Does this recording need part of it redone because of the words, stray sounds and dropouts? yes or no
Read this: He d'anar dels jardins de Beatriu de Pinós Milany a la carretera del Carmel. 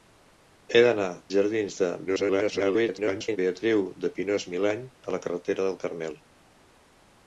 yes